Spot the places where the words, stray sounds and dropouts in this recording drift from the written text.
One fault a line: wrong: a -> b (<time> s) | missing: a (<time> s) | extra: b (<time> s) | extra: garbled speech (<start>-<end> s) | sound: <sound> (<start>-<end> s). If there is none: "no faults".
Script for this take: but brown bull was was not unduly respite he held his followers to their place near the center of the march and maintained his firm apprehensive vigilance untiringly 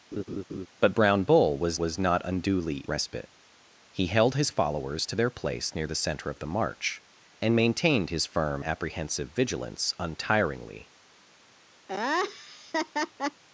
sound: laugh (0.1-0.7 s)
sound: laugh (11.9-13.4 s)